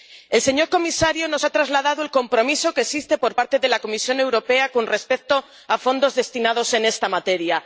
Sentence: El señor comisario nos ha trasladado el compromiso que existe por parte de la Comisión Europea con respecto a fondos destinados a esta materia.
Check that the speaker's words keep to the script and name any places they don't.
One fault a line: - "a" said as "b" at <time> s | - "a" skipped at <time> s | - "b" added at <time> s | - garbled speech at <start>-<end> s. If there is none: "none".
none